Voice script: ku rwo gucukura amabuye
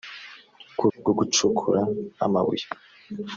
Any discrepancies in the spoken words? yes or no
no